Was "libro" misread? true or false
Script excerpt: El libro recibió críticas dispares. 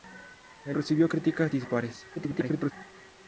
true